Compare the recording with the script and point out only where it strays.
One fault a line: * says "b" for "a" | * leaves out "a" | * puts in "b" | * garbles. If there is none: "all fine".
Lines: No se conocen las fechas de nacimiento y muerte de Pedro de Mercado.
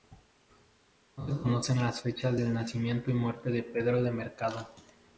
all fine